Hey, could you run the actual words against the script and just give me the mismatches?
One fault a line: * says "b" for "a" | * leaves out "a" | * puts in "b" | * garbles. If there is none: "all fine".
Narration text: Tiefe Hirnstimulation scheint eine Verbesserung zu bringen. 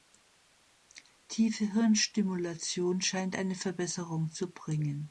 all fine